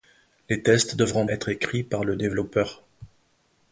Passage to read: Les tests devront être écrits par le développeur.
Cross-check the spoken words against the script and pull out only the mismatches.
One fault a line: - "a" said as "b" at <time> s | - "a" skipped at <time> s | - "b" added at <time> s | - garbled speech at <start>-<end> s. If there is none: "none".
none